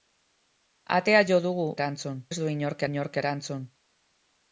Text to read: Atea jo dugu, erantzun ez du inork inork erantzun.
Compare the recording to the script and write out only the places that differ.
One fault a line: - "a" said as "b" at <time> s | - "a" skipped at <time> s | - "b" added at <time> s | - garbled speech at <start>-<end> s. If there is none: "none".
none